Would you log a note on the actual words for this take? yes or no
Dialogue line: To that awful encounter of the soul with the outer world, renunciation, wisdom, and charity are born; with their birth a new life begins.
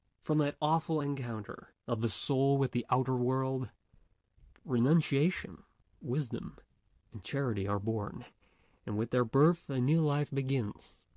yes